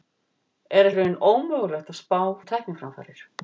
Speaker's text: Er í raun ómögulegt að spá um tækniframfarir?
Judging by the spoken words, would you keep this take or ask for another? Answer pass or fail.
pass